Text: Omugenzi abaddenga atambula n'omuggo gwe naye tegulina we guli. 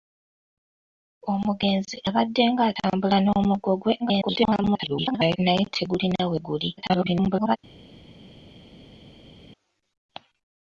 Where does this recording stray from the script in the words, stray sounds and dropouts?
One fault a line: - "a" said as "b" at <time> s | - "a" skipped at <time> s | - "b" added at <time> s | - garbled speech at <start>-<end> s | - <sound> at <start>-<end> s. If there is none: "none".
- garbled speech at 4.0-5.4 s
- garbled speech at 6.8-7.6 s